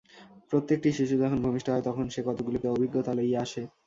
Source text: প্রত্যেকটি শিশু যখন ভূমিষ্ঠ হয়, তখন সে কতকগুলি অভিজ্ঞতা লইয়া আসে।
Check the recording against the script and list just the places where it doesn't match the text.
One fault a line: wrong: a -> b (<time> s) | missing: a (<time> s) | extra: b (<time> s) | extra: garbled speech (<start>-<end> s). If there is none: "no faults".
no faults